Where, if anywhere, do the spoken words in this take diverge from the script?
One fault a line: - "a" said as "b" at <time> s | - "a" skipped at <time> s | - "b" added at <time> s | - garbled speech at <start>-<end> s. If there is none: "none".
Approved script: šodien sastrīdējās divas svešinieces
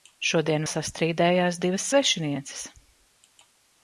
none